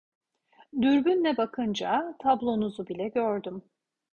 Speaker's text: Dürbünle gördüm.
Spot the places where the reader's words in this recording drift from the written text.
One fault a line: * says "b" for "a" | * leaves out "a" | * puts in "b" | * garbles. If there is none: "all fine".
* puts in "bakınca tablonuzu bile"